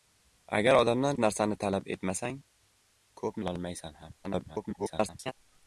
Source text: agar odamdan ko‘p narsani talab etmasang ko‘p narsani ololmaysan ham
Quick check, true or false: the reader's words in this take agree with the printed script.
false